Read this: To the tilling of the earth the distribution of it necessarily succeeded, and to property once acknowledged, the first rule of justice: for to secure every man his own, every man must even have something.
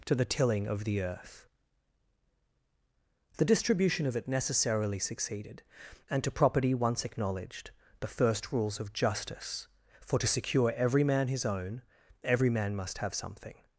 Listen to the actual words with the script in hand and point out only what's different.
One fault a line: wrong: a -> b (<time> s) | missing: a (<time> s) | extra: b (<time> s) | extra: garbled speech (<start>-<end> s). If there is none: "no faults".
wrong: rule -> rules (8.5 s)
missing: even (13.0 s)